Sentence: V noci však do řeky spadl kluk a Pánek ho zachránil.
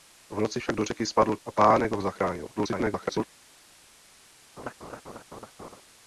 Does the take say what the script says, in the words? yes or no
no